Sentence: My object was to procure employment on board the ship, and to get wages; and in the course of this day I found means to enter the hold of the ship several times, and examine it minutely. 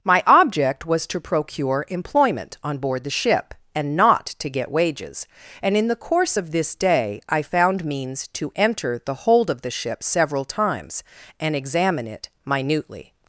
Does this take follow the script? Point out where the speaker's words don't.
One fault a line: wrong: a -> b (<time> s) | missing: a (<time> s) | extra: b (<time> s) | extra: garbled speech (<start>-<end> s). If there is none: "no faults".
extra: not (4.0 s)